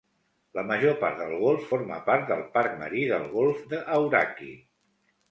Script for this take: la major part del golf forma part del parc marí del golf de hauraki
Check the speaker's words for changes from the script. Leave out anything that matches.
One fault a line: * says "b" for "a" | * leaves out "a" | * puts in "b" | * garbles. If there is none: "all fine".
all fine